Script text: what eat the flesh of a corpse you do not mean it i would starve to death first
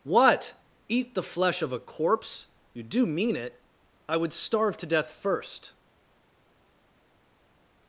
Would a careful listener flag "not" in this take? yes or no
yes